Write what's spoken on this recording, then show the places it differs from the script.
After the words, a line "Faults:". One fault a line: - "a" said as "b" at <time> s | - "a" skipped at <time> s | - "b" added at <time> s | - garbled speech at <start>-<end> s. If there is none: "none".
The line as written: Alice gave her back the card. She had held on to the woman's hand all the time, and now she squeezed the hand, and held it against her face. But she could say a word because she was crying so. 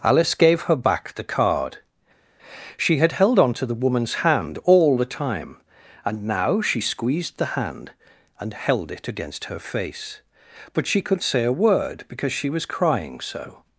Alice gave her back the card. She had held on to the woman's hand all the time, and now she squeezed the hand, and held it against her face. But she could say a word because she was crying so.
Faults:
none